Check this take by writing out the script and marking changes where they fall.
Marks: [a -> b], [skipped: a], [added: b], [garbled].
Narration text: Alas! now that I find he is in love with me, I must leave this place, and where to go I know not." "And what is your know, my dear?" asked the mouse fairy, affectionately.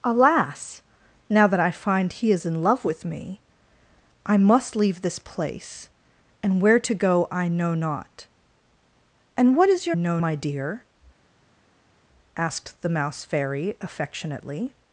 Alas! now that I find he is in love with me, I must leave this place, and where to go I know not." "And what is your know, my dear?" asked the mouse fairy, affectionately.